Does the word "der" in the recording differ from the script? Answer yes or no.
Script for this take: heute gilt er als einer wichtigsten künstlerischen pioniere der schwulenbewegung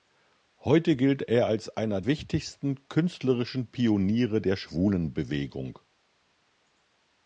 no